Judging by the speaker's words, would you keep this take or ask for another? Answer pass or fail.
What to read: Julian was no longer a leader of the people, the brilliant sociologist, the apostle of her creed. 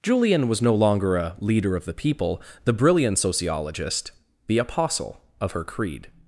pass